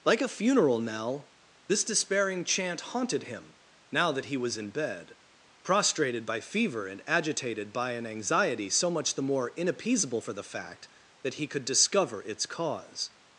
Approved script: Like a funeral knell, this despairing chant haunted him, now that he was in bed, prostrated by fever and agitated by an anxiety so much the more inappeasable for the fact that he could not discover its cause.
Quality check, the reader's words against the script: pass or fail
fail